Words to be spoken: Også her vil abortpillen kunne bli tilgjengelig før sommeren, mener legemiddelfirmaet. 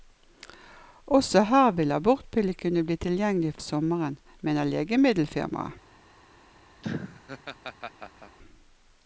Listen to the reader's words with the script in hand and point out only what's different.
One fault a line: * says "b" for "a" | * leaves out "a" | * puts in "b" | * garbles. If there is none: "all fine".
* leaves out "før"